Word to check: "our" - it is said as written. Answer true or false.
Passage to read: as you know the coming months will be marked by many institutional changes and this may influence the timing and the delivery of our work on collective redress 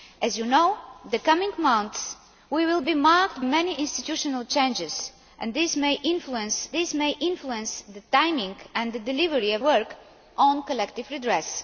false